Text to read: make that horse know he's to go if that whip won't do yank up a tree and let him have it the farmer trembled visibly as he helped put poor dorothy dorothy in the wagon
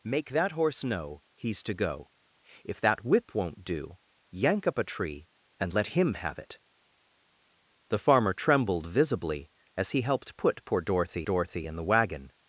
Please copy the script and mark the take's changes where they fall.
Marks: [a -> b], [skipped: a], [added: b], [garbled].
make that horse know he's to go if that whip won't do yank up a tree and let him have it the farmer trembled visibly as he helped put poor dorothy dorothy in the wagon